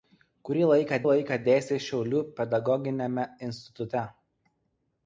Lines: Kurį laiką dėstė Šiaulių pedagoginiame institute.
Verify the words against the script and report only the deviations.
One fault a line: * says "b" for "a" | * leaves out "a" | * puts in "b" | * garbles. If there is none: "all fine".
* puts in "laiką"